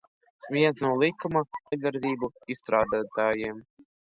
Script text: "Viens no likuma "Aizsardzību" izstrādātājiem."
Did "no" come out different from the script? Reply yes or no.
no